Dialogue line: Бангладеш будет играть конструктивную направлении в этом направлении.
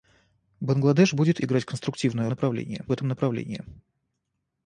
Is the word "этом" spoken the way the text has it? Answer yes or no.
yes